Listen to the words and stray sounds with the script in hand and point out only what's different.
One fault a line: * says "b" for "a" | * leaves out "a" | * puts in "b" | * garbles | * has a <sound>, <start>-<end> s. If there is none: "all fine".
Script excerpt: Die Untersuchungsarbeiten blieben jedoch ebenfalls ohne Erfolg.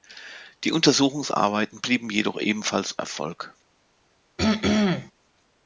* leaves out "ohne"
* has a throat clearing, 4.4-5.1 s